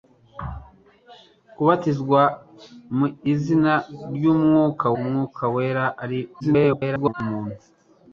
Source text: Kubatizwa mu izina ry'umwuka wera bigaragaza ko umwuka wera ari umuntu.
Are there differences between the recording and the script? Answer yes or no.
yes